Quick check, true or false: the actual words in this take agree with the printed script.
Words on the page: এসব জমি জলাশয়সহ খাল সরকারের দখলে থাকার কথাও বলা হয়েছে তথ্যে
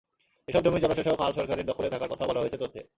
true